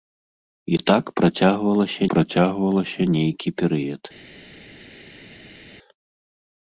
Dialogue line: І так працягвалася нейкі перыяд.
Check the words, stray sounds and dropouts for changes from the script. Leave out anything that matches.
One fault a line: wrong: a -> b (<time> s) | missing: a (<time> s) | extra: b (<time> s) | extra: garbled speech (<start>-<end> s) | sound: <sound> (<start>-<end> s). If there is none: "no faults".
extra: працягвалася (2.1 s)